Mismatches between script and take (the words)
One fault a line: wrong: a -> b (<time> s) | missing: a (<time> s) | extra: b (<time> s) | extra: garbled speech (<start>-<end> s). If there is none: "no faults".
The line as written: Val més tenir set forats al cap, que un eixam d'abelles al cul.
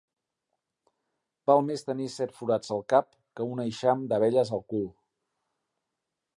no faults